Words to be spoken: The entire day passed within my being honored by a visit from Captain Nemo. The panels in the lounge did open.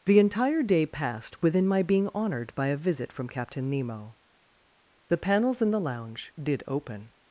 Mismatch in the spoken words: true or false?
false